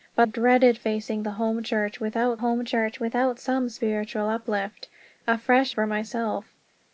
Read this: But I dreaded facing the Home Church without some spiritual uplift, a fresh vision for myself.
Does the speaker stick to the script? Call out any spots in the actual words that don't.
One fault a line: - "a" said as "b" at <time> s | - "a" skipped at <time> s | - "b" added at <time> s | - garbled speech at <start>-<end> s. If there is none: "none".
- "I" skipped at 0.3 s
- "Home Church without" added at 2.4 s
- "vision" skipped at 5.7 s